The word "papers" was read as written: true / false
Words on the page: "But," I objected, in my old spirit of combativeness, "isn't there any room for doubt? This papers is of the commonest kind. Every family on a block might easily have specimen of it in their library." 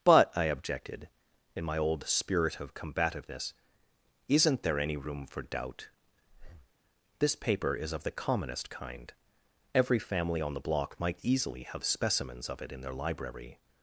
false